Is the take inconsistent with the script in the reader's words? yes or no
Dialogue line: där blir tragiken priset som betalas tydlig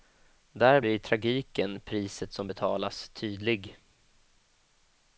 no